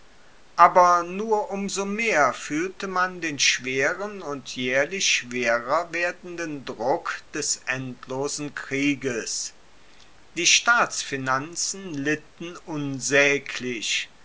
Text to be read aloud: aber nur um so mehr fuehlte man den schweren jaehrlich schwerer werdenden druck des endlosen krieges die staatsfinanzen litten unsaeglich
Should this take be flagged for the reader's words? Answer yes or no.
yes